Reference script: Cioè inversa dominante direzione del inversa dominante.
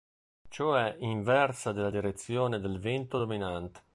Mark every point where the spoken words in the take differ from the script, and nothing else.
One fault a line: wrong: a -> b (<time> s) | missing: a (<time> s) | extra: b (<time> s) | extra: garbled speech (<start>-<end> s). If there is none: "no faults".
wrong: dominante -> della (1.7 s)
wrong: inversa -> vento (2.8 s)